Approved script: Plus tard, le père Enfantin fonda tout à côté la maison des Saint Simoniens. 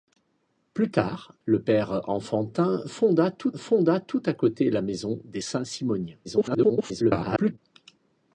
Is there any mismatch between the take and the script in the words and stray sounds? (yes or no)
yes